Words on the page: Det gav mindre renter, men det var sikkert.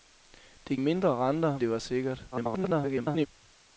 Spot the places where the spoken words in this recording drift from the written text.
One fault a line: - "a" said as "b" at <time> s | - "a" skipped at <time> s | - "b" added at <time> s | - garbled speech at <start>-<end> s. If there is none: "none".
- "gav" skipped at 0.8 s
- "men" skipped at 1.6 s
- garbled speech at 2.3-3.3 s